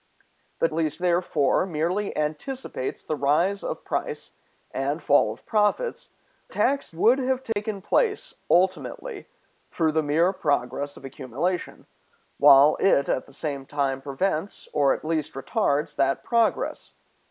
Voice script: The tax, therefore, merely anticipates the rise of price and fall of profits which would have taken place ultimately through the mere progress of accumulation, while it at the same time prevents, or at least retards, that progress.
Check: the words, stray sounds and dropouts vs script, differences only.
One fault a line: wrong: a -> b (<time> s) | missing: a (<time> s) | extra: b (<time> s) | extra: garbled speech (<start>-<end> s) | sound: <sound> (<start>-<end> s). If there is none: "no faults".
wrong: tax -> least (0.7 s)
wrong: which -> tax (6.5 s)
sound: dropout (7.5-7.6 s)